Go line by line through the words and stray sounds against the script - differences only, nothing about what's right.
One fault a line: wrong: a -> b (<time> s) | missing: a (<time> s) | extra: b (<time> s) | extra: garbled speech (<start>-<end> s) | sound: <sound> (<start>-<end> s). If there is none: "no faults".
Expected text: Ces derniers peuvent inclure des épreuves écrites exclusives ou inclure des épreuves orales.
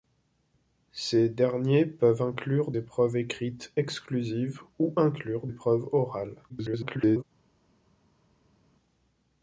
missing: des (2.7 s)
missing: des (5.5 s)
extra: garbled speech (6.5-7.2 s)